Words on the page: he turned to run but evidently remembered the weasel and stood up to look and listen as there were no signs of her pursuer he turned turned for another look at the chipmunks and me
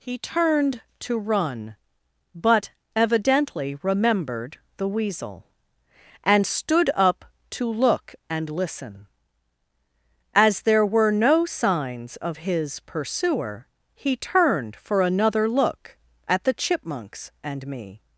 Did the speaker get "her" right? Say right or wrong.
wrong